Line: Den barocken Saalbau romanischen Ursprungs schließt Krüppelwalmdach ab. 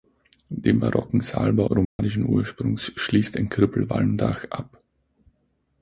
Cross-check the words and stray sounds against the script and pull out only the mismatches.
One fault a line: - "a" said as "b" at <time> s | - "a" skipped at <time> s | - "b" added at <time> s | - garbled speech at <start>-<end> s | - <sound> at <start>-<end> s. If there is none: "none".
- dropout at 1.8-2.0 s
- "ein" added at 3.4 s